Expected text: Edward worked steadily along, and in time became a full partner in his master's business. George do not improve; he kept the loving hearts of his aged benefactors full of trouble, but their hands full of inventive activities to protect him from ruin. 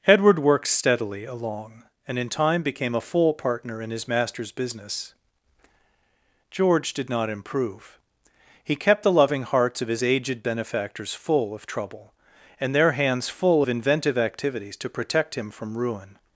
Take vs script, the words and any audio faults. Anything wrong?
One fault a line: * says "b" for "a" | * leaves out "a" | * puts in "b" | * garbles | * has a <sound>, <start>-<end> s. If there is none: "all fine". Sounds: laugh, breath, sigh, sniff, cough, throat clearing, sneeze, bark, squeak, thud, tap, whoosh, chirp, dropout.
* says "did" for "do"
* says "and" for "but"